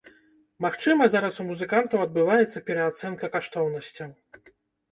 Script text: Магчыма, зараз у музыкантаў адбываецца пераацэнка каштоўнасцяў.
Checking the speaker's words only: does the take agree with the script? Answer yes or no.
yes